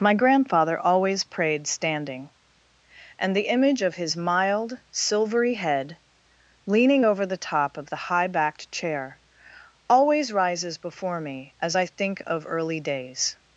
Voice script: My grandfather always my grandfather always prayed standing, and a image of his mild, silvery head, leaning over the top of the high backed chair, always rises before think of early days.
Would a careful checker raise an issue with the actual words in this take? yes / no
yes